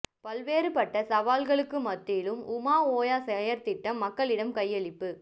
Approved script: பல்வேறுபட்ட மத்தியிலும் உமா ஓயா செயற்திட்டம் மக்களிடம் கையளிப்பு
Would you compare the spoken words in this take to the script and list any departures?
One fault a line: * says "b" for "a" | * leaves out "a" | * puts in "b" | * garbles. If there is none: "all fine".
* puts in "சவால்களுக்கு"